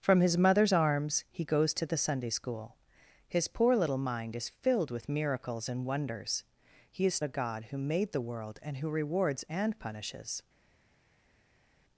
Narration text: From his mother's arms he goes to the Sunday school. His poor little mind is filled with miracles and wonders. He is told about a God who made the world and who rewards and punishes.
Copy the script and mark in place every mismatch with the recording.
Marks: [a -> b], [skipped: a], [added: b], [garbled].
From his mother's arms he goes to the Sunday school. His poor little mind is filled with miracles and wonders. He is [skipped: told about] a God who made the world and who rewards and punishes.